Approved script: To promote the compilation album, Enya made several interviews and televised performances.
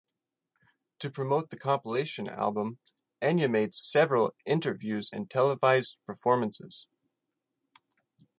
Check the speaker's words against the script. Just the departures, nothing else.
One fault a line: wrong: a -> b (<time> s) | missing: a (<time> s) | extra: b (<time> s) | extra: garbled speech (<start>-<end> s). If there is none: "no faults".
no faults